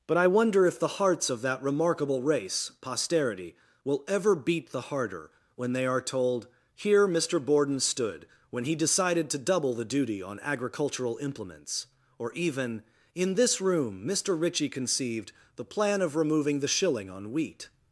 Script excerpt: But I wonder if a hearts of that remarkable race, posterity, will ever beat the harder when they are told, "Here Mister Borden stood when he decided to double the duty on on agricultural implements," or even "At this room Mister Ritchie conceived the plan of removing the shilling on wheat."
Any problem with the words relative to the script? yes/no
yes